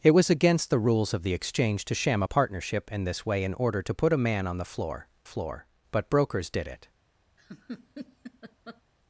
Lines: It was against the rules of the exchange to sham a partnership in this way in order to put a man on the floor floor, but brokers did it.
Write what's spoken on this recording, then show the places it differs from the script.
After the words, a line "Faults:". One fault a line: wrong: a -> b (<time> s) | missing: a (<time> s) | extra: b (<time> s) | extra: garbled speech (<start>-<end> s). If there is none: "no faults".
It was against the rules of the exchange to sham a partnership in this way in order to put a man on the floor floor, but brokers did it.
Faults:
no faults